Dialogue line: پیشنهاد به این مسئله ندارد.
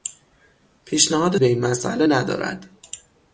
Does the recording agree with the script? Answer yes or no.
yes